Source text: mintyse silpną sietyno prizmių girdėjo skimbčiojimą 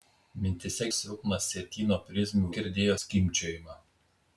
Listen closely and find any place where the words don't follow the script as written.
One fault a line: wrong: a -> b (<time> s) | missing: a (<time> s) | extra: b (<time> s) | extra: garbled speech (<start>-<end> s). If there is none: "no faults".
no faults